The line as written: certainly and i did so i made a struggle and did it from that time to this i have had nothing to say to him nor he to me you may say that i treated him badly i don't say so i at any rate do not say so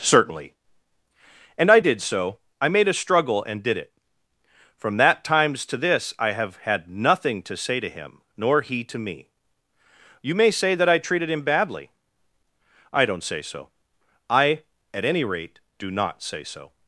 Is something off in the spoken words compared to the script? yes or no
yes